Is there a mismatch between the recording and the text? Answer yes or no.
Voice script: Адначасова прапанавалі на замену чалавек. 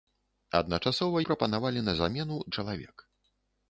no